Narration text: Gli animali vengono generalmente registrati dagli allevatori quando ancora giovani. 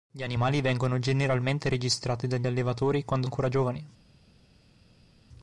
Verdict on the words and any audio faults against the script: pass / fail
pass